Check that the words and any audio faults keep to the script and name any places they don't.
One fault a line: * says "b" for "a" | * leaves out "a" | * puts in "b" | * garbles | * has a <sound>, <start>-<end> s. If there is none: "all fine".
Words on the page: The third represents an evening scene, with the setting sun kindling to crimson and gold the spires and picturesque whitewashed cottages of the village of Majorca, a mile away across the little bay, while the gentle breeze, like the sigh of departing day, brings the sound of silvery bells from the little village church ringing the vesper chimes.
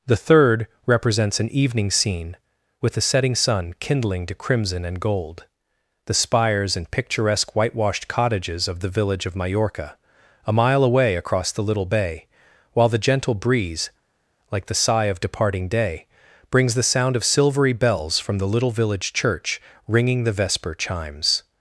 all fine